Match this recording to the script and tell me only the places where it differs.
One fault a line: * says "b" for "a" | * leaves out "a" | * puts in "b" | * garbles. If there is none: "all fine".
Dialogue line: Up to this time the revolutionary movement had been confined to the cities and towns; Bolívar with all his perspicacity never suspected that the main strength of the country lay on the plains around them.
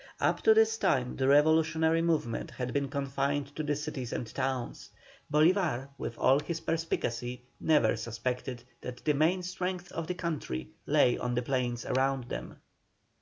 all fine